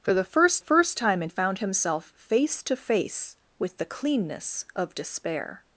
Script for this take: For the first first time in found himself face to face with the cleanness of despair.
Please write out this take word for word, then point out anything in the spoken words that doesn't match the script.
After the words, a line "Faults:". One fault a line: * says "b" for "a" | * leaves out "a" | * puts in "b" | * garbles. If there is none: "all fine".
For the first first time in found himself face to face with the cleanness of despair.
Faults:
all fine